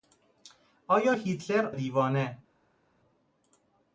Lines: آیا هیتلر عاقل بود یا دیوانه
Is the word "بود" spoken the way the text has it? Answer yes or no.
no